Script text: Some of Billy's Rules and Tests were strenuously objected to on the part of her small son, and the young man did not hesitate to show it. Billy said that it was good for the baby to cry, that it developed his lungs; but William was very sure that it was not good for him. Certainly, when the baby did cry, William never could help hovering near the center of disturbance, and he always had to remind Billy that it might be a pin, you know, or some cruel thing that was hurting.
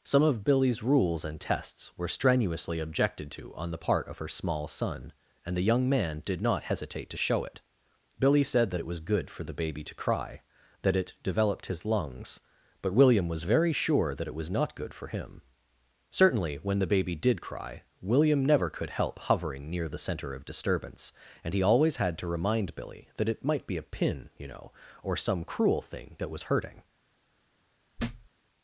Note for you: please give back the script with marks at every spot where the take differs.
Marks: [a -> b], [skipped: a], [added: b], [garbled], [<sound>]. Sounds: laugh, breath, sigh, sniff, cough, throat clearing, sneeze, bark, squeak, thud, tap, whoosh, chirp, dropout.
Some of Billy's Rules and Tests were strenuously objected to on the part of her small son, and the young man did not hesitate to show it. Billy said that it was good for the baby to cry, that it developed his lungs; but William was very sure that it was not good for him. Certainly, when the baby did cry, William never could help hovering near the center of disturbance, and he always had to remind Billy that it might be a pin, you know, or some cruel thing that was hurting. [thud]